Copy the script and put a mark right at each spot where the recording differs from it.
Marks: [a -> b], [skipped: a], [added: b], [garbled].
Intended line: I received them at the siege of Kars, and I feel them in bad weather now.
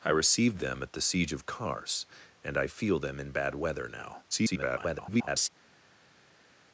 I received them at the siege of Kars, and I feel them in bad weather now. [garbled]